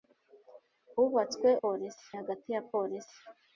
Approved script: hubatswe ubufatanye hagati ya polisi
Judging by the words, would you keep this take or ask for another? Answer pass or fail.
fail